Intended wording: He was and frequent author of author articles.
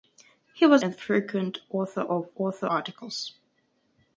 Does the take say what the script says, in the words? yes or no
yes